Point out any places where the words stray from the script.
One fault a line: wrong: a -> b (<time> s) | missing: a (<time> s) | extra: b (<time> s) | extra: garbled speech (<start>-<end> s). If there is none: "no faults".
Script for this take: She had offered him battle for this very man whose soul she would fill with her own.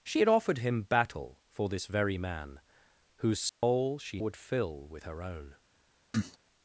no faults